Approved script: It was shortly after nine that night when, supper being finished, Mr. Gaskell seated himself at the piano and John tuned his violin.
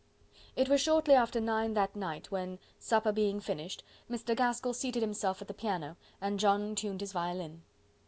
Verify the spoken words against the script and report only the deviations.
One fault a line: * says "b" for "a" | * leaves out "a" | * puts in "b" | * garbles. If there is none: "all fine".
all fine